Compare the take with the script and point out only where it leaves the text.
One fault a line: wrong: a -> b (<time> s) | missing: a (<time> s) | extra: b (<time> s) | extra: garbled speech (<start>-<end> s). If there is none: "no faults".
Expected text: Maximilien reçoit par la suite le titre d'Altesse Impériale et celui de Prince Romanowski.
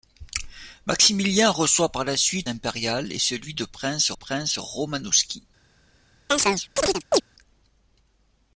missing: le titre d'Altesse (2.5 s)
extra: Prince (4.1 s)